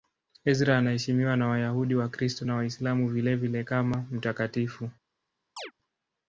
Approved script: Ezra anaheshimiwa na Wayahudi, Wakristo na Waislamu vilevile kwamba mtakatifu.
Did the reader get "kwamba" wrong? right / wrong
wrong